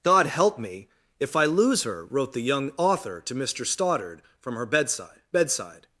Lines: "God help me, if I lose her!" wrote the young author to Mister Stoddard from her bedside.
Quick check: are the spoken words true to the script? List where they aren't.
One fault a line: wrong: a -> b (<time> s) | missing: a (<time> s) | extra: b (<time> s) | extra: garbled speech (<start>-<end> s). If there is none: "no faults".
extra: bedside (5.3 s)